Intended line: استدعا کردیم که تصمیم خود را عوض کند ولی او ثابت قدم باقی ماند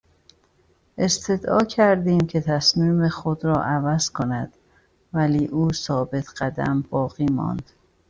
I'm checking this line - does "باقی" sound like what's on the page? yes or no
yes